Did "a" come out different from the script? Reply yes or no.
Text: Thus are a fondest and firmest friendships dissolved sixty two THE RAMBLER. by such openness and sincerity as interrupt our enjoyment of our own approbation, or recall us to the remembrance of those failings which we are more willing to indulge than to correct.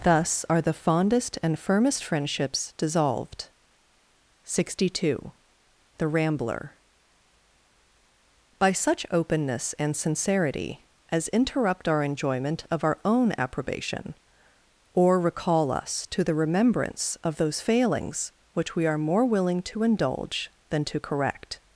yes